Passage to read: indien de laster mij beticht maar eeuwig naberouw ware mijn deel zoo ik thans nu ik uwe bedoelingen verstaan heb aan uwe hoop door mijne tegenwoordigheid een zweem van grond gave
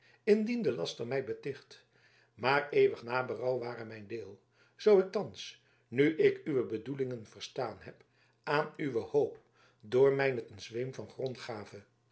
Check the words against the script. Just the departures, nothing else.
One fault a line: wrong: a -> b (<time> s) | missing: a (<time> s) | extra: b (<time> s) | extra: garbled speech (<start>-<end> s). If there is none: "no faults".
missing: tegenwoordigheid (10.5 s)